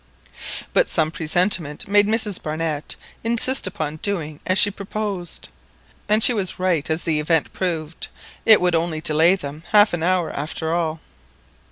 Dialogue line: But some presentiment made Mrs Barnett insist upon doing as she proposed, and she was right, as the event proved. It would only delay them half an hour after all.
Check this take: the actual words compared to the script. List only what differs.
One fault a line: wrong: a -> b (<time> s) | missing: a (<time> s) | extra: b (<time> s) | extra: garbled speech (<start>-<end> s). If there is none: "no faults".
no faults